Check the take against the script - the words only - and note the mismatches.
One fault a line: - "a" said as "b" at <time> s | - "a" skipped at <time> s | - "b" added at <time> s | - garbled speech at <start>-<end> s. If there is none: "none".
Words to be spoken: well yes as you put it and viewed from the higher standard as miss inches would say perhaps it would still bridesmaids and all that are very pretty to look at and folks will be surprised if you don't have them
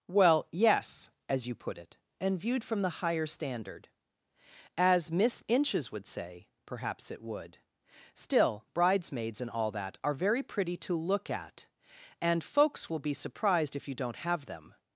none